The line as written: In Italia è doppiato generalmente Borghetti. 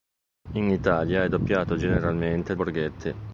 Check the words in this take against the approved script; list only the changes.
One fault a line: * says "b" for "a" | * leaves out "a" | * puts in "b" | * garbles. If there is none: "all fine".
all fine